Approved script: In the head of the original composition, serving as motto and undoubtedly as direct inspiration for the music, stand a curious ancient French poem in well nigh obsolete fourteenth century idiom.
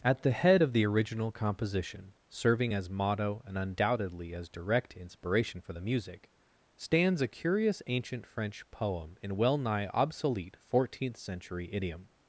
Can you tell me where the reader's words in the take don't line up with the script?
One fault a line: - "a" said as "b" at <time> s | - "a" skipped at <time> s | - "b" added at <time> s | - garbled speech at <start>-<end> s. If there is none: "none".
- "In" said as "At" at 0.0 s
- "stand" said as "stands" at 6.7 s